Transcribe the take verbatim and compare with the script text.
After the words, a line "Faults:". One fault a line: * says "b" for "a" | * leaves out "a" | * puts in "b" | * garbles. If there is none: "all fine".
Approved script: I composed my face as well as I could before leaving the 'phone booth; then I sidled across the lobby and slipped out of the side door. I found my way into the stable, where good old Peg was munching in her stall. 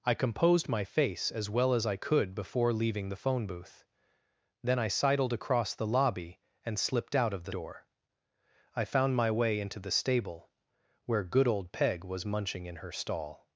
I composed my face as well as I could before leaving the 'phone booth; then I sidled across the lobby and slipped out of the door. I found my way into the stable, where good old Peg was munching in her stall.
Faults:
* leaves out "side"